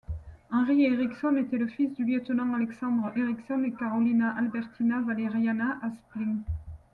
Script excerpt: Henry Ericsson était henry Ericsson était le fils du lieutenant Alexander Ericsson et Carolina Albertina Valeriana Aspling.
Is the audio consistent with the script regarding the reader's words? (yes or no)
no